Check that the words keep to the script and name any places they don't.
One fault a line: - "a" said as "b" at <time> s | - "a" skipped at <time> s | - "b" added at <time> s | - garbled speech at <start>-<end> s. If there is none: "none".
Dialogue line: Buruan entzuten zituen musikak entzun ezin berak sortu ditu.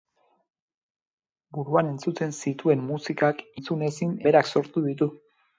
none